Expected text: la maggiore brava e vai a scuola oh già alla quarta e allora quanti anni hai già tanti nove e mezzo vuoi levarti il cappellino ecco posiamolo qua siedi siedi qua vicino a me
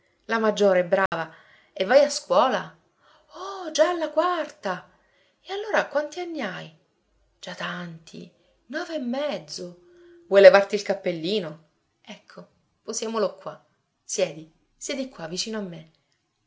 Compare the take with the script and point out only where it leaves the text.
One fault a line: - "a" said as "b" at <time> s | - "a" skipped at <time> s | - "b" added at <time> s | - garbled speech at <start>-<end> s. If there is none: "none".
none